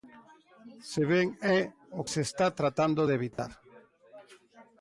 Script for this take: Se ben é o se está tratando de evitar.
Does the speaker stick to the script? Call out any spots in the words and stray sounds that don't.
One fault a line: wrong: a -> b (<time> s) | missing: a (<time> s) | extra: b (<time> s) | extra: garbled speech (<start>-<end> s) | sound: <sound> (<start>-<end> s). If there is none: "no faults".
sound: dropout (3.3-3.4 s)